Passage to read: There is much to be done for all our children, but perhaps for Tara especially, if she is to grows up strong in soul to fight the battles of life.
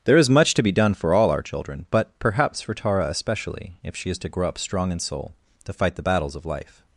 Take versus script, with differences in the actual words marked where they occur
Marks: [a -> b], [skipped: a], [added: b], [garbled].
There is much to be done for all our children, but perhaps for Tara especially, if she is to [grows -> grow] up strong in soul to fight the battles of life.